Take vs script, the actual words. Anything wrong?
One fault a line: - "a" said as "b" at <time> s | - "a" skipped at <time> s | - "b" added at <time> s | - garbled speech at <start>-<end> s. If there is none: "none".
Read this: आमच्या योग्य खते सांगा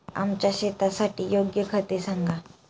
- "शेतासाठी" added at 0.5 s